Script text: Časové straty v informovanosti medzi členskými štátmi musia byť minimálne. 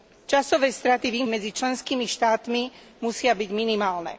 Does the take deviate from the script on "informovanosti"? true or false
true